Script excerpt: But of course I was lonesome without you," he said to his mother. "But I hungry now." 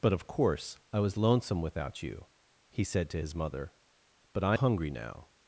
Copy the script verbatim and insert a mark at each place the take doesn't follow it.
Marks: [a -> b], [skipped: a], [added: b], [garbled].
But of course I was lonesome without you," he said to his mother. "But I hungry now."